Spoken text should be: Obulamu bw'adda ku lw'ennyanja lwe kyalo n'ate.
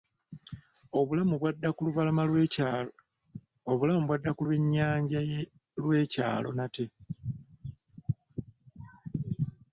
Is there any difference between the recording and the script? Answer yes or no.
no